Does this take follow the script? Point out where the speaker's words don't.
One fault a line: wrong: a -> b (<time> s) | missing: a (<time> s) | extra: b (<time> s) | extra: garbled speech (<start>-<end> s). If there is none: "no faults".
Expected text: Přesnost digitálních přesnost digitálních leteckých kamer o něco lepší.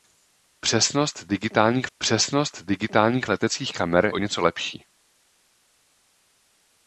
no faults